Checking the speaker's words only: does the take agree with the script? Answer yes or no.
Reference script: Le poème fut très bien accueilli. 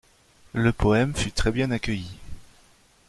yes